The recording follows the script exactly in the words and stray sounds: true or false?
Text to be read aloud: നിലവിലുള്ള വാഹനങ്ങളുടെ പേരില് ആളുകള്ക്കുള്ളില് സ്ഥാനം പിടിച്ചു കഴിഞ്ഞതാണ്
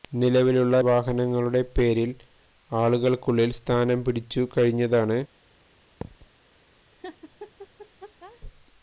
false